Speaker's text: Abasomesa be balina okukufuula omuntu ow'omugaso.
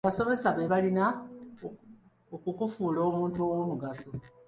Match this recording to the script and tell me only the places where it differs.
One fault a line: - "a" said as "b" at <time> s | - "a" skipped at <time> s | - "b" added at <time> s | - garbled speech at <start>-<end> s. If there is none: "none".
none